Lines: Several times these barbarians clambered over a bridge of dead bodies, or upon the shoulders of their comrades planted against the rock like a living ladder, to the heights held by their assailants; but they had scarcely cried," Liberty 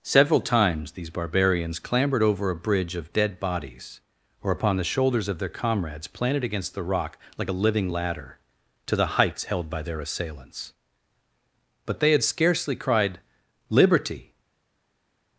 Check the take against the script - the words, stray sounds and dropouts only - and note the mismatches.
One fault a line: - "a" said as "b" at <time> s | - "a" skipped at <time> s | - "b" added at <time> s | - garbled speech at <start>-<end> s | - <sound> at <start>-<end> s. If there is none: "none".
none